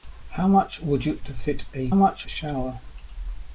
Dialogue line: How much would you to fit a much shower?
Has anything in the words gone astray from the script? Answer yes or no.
no